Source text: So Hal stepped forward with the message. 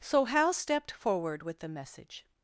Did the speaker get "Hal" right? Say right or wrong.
right